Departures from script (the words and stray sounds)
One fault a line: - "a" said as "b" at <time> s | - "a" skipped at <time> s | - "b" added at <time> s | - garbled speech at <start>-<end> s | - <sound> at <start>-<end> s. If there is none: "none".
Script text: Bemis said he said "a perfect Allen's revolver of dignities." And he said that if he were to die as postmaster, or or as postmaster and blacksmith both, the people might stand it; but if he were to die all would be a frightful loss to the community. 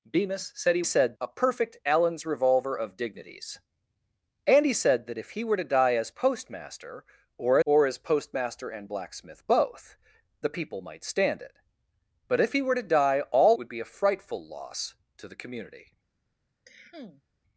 - cough at 16.6-17.2 s